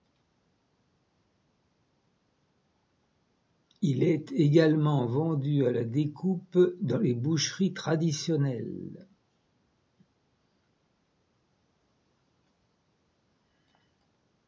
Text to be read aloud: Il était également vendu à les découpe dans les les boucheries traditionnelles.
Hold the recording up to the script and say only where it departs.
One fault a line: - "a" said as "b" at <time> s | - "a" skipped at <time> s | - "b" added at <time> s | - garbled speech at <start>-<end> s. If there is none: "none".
- "était" said as "est" at 4.0 s
- "les" said as "la" at 5.7 s
- "les" skipped at 7.1 s